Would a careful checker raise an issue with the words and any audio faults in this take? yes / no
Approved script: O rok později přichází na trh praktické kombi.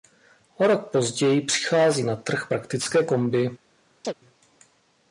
yes